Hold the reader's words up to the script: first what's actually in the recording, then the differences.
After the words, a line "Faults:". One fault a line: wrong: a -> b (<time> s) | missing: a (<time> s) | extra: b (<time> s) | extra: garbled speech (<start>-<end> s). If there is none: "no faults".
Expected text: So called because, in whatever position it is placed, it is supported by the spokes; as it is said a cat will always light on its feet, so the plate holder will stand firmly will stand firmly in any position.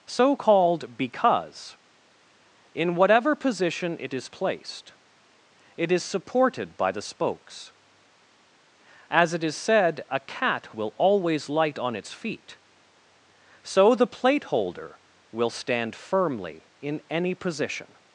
So called because, in whatever position it is placed, it is supported by the spokes; as it is said a cat will always light on its feet, so the plate holder will stand firmly in any position.
Faults:
missing: will stand firmly (16.7 s)